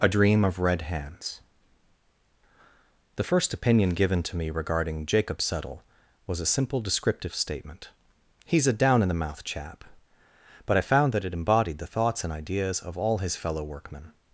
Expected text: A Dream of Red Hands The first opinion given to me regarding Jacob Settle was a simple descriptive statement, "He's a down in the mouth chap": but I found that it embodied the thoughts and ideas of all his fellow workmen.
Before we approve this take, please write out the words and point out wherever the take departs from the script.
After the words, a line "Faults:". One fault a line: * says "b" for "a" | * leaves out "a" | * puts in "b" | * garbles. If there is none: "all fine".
A Dream of Red Hands The first opinion given to me regarding Jacob Settle was a simple descriptive statement, "He's a down in the mouth chap": but I found that it embodied the thoughts and ideas of all his fellow workmen.
Faults:
all fine